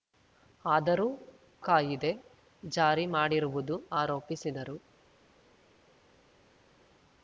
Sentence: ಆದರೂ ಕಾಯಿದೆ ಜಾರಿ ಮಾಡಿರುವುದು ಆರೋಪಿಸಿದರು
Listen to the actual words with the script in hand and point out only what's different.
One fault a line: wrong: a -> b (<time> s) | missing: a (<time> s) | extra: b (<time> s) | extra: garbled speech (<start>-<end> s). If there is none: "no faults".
no faults